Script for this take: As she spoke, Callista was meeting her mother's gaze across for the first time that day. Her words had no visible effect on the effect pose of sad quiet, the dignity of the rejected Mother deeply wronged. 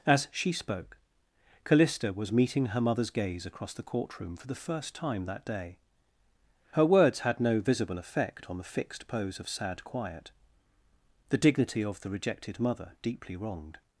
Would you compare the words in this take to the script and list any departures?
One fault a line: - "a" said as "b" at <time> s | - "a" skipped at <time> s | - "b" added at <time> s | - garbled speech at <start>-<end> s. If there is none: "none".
- "the courtroom" added at 3.7 s
- "effect" said as "fixed" at 8.6 s